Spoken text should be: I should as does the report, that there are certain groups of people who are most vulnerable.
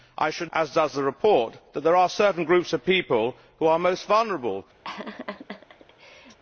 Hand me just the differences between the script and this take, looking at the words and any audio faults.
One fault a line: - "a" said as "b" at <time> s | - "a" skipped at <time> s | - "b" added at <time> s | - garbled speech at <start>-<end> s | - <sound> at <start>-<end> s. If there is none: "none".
- laugh at 4.8-6.4 s